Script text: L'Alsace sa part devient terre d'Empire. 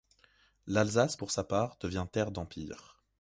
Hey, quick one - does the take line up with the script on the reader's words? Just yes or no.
no